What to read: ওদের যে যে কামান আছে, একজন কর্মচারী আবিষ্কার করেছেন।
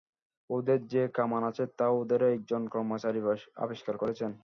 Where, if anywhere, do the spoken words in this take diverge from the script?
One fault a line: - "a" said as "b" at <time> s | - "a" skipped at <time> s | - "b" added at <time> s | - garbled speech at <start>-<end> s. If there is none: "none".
- "যে" skipped at 1.0 s
- "তা ওদেরই" added at 1.8 s